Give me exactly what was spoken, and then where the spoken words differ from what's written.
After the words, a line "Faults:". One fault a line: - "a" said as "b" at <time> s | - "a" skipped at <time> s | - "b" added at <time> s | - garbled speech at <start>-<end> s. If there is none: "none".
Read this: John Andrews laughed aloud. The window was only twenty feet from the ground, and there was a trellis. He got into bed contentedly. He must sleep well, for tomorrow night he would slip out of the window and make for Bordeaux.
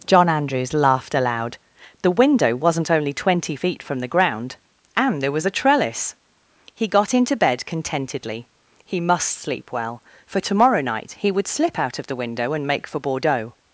John Andrews laughed aloud. The window wasn't only twenty feet from the ground, and there was a trellis. He got into bed contentedly. He must sleep well, for tomorrow night he would slip out of the window and make for Bordeaux.
Faults:
- "was" said as "wasn't" at 2.5 s